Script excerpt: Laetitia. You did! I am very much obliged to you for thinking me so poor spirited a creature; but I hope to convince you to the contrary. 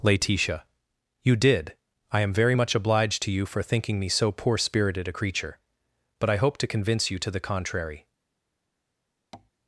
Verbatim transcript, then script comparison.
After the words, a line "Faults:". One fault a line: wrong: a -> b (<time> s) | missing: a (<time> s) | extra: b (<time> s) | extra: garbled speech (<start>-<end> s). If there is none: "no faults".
Laetitia. You did! I am very much obliged to you for thinking me so poor spirited a creature; but I hope to convince you to the contrary.
Faults:
no faults